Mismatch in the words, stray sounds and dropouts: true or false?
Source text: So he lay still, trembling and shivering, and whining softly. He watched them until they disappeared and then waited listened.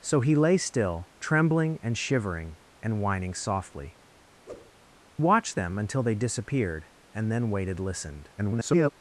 true